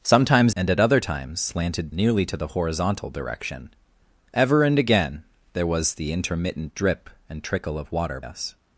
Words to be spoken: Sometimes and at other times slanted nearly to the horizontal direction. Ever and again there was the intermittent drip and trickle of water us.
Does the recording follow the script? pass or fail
pass